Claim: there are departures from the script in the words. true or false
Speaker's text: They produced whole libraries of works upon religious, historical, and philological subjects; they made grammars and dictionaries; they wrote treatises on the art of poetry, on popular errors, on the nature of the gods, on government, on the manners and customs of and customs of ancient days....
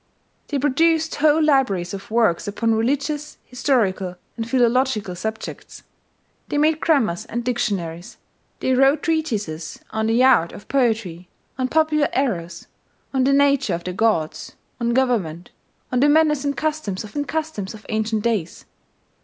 false